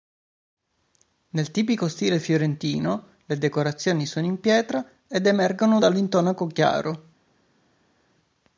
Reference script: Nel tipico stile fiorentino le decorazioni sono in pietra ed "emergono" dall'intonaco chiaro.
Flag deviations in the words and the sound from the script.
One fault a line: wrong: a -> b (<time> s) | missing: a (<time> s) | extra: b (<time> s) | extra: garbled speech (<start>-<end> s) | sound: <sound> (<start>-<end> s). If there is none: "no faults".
no faults